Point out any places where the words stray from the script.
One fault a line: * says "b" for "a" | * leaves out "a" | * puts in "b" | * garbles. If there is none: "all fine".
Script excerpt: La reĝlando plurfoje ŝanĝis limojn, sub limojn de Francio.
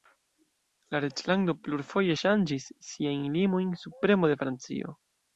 * puts in "siajn"
* says "premo" for "limojn"